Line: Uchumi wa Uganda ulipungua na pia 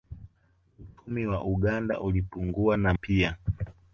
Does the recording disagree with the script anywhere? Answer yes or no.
no